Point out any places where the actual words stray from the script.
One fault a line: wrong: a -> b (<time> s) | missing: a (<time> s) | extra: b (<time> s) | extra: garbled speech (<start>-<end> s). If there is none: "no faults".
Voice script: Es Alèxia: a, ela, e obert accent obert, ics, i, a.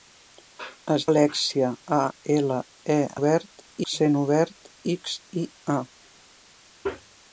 no faults